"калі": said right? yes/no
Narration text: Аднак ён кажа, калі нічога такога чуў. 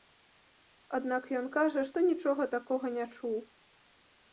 no